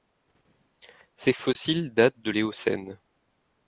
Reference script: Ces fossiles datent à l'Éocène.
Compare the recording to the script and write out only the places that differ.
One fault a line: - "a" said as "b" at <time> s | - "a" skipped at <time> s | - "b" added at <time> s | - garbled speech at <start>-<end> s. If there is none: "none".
- "à" said as "de" at 2.2 s